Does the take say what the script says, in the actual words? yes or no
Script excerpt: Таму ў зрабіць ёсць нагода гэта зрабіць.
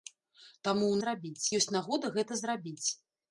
yes